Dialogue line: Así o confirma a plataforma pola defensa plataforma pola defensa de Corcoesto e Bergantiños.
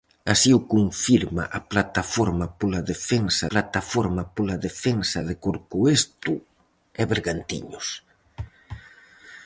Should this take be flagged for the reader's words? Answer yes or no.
no